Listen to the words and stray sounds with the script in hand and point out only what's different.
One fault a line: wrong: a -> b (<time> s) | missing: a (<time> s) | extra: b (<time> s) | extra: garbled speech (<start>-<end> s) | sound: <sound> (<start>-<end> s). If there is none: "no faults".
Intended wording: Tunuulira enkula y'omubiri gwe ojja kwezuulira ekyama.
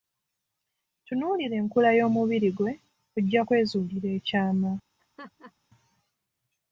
sound: laugh (5.0-5.5 s)